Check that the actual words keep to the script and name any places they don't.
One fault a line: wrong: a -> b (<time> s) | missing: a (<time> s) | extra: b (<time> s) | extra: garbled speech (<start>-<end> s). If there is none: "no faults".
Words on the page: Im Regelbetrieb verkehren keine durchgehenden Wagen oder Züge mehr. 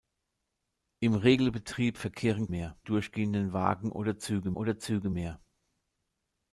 wrong: keine -> mehr (2.5 s)
extra: oder Züge (4.5 s)